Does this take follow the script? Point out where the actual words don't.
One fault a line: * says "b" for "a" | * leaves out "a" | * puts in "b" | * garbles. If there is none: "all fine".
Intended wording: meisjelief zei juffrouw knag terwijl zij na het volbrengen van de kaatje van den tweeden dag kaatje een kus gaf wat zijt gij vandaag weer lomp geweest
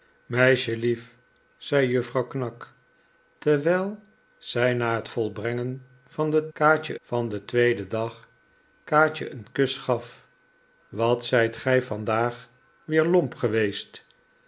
all fine